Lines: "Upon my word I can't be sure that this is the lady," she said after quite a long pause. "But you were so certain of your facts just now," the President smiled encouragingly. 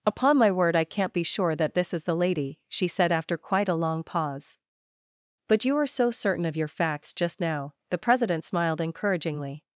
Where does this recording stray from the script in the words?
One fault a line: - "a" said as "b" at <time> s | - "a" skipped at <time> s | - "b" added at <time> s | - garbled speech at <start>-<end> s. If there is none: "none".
none